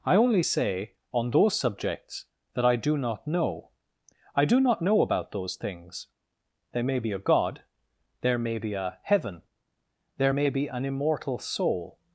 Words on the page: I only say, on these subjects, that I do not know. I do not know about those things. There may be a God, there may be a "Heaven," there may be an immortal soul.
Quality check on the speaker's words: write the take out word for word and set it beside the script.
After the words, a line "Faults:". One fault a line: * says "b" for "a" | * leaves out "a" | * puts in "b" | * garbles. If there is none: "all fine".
I only say, on those subjects, that I do not know. I do not know about those things. There may be a God, there may be a "Heaven," there may be an immortal soul.
Faults:
* says "those" for "these"